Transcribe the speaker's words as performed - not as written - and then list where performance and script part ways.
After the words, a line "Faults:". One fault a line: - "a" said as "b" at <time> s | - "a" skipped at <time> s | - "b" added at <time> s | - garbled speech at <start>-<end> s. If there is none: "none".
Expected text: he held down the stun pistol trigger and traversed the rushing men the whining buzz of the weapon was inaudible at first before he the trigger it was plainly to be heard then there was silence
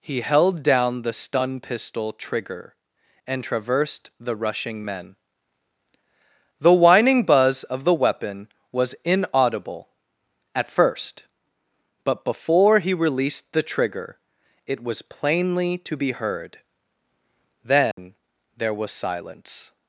he held down the stun pistol trigger and traversed the rushing men the whining buzz of the weapon was inaudible at first but before he released the trigger it was plainly to be heard then there was silence
Faults:
- "but" added at 12.0 s
- "released" added at 12.9 s